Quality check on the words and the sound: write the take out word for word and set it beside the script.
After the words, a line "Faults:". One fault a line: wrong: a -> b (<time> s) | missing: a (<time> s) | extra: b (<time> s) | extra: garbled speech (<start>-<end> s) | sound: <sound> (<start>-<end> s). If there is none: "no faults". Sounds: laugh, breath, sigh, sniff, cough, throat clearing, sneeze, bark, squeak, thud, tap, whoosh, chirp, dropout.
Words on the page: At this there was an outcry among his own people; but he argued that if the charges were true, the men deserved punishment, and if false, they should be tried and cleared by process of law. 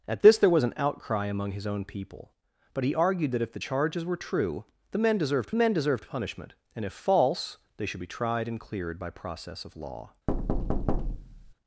At this there was an outcry among his own people; but he argued that if the charges were true, the men deserved men deserved punishment, and if false, they should be tried and cleared by process of law.
Faults:
extra: men deserved (5.5 s)
sound: thud (10.3-11.5 s)